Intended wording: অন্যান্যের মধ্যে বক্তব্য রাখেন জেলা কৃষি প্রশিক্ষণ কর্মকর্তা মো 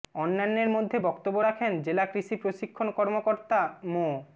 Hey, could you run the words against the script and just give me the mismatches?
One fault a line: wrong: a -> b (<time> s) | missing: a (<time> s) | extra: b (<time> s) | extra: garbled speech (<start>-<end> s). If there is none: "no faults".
no faults